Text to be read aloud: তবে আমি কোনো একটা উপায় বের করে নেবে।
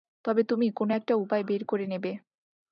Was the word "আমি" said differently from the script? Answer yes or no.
yes